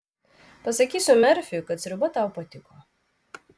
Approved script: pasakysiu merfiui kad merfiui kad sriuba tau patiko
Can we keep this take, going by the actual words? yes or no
no